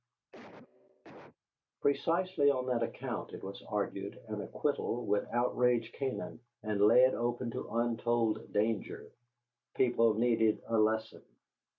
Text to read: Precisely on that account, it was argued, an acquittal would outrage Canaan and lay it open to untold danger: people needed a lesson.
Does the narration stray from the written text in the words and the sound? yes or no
yes